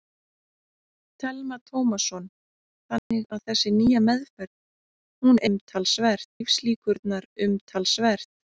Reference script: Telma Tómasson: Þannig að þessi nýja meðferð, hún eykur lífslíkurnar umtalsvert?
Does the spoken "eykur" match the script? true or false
false